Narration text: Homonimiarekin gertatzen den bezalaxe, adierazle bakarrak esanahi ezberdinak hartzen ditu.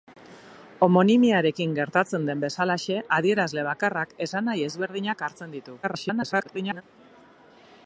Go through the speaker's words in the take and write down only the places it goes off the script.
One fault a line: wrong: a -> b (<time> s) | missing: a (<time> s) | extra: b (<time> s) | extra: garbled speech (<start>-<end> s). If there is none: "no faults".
extra: garbled speech (5.8-6.8 s)